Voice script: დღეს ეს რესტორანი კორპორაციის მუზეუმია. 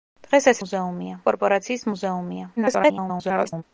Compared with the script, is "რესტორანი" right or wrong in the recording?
wrong